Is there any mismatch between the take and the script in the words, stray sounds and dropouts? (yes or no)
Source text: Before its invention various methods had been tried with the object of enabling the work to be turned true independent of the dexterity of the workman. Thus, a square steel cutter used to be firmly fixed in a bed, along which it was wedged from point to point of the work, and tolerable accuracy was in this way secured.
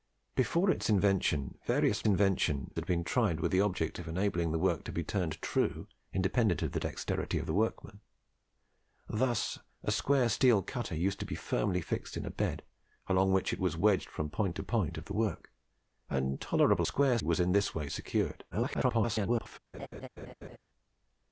yes